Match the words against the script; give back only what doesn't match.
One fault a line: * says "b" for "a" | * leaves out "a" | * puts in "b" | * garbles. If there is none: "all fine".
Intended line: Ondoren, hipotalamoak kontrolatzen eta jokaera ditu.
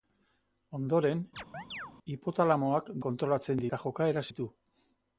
all fine